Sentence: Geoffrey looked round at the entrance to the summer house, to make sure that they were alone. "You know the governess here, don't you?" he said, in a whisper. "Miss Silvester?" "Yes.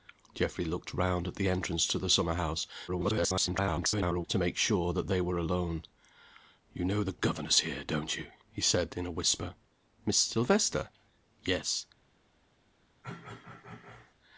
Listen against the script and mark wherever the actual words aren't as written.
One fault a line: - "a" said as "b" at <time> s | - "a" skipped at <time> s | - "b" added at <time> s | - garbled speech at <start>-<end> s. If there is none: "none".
- garbled speech at 2.9-4.3 s